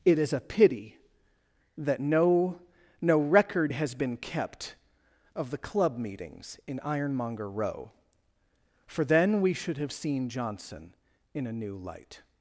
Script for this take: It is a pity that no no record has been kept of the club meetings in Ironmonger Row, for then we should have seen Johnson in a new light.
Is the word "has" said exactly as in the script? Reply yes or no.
yes